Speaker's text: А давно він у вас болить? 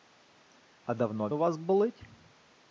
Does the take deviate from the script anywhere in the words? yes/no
yes